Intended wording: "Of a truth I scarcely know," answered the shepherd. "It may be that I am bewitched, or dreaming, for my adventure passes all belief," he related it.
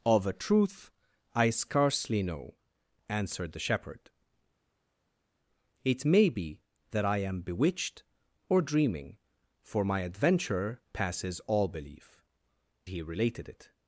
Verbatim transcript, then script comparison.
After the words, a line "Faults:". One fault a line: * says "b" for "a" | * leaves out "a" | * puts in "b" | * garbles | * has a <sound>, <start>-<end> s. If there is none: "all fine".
"Of a truth I scarcely know," answered the shepherd. "It may be that I am bewitched, or dreaming, for my adventure passes all belief," he related it.
Faults:
all fine